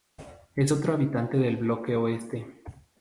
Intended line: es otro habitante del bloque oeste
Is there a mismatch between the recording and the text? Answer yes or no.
no